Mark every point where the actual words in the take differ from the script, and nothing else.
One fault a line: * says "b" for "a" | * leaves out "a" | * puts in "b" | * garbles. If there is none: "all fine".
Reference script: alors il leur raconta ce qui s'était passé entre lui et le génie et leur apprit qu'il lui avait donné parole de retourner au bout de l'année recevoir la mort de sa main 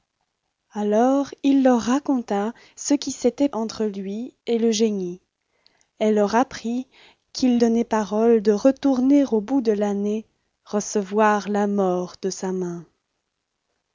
* leaves out "passé"
* leaves out "lui avait"